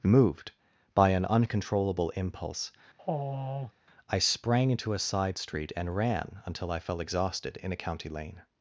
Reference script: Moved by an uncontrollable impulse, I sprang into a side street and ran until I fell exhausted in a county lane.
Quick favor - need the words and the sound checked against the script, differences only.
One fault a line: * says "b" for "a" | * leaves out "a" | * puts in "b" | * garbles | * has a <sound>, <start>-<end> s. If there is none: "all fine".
* has a sigh, 3.0-3.7 s